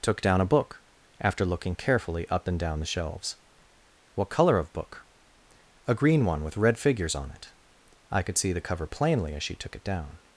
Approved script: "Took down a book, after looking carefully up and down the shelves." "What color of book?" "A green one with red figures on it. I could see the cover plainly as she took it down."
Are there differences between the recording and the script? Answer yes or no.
no